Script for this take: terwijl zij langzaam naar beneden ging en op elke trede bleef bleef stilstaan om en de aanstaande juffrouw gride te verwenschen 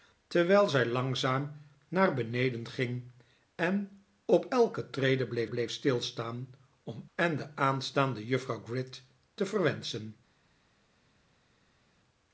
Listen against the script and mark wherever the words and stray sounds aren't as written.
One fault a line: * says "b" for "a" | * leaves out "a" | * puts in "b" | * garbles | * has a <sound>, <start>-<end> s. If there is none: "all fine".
all fine